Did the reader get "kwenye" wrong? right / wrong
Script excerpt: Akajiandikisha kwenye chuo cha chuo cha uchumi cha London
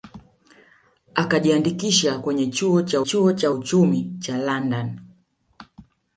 right